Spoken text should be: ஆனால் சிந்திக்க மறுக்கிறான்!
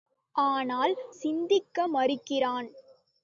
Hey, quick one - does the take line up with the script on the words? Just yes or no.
yes